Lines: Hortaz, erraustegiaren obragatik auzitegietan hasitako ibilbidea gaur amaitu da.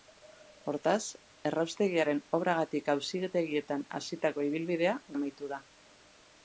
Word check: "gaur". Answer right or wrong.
wrong